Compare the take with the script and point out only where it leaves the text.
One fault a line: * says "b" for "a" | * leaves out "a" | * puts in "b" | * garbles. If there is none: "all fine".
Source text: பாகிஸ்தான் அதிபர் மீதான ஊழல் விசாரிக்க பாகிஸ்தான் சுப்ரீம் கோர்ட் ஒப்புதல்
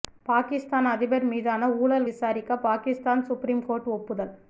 all fine